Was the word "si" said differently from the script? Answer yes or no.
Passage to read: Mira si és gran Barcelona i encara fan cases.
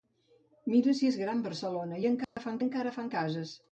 no